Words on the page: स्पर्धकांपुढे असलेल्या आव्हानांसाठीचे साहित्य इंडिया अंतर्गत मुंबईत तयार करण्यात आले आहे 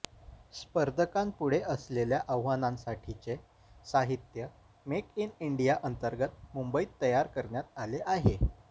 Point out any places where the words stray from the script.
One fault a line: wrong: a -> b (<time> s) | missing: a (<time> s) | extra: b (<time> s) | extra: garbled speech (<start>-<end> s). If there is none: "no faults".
extra: मेक इन (4.8 s)